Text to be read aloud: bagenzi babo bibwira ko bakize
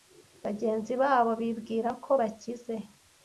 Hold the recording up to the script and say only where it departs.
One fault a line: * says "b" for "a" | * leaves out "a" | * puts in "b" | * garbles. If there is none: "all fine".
all fine